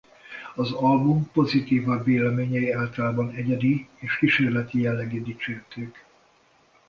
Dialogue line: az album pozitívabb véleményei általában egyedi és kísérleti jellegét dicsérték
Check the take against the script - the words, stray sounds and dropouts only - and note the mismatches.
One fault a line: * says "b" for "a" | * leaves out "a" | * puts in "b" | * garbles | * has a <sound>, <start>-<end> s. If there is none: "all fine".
all fine